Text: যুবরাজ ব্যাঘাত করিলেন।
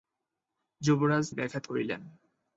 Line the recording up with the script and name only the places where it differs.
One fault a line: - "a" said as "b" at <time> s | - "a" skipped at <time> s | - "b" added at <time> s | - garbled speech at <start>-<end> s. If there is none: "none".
none